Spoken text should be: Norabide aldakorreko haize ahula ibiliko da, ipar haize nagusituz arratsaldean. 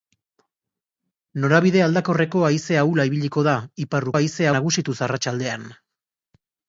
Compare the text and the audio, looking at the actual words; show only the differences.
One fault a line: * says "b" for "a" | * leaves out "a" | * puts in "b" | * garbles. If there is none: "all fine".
all fine